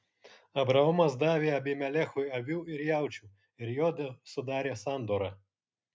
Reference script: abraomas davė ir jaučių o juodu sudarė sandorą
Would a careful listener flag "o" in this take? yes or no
yes